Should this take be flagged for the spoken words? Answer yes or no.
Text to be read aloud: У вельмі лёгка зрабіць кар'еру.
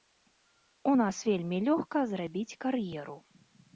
yes